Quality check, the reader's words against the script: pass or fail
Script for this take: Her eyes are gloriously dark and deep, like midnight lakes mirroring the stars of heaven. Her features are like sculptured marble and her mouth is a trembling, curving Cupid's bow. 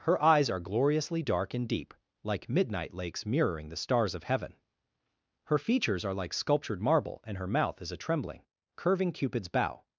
pass